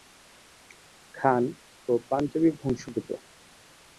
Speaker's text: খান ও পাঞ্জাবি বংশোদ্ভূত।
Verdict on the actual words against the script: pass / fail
pass